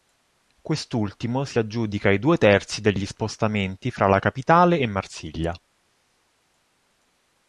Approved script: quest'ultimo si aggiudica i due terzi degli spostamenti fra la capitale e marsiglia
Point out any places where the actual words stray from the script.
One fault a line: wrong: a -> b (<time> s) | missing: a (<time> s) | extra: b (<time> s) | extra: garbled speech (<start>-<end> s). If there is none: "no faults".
no faults